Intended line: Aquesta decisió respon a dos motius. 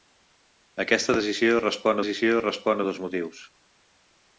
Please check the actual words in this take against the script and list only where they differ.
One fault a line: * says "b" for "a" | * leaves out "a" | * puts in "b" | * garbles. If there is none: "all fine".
* puts in "decisió respon"